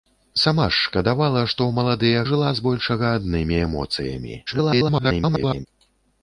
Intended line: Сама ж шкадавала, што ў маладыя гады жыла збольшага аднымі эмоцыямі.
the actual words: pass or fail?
fail